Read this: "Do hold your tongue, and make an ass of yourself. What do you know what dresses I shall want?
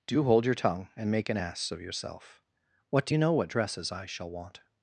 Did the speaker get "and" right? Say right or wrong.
right